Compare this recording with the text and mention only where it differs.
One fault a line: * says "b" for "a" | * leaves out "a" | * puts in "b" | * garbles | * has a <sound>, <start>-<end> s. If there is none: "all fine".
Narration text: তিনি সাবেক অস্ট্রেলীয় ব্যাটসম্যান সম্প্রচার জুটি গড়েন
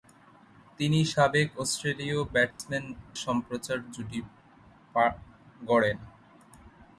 * has a dropout, 2.5-2.6 s